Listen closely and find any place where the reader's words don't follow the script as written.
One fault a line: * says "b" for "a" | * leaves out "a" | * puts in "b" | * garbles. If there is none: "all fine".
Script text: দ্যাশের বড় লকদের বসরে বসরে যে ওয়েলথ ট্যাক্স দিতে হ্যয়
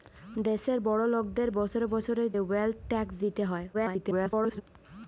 * leaves out "যে"
* garbles